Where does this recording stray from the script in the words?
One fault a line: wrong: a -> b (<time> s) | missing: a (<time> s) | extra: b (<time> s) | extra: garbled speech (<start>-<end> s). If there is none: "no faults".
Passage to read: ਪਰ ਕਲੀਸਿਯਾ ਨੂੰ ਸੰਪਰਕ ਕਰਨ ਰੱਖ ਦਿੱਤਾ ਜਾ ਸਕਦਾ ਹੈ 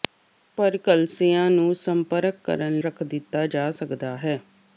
no faults